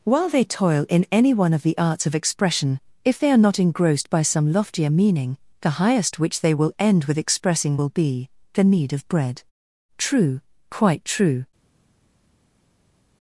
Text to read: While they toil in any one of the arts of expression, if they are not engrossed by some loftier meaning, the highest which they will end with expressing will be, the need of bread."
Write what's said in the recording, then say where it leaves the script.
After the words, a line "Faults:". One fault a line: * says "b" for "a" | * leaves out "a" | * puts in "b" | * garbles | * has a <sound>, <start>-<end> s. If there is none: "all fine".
While they toil in any one of the arts of expression, if they are not engrossed by some loftier meaning, the highest which they will end with expressing will be, the need of bread." "True quite true
Faults:
* puts in "True quite true"